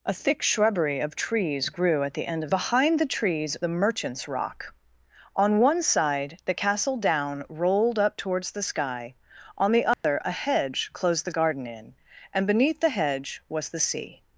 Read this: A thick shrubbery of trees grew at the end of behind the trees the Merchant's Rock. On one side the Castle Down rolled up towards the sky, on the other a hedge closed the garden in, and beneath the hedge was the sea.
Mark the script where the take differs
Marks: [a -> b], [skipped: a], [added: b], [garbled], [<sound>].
A thick shrubbery of trees grew at the end of behind the trees the Merchant's Rock. On one side the Castle Down rolled up towards the sky, on the other [dropout] a hedge closed the garden in, and beneath the hedge was the sea.